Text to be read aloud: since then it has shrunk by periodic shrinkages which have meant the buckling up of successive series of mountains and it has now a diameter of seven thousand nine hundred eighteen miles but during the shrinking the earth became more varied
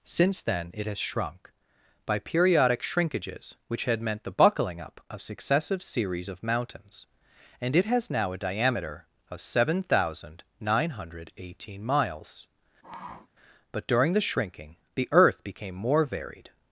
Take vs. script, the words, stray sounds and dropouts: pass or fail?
fail